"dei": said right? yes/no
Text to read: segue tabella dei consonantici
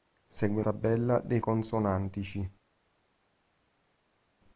yes